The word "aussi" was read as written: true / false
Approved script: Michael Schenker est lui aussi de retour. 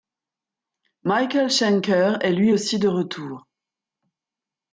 true